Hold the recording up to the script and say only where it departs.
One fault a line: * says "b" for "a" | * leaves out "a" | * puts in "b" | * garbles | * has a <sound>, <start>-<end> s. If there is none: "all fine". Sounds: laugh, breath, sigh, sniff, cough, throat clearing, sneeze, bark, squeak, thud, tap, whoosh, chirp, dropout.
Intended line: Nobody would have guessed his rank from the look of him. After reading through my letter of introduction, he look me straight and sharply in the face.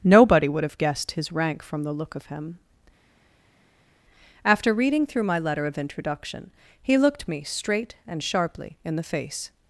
* says "looked" for "look"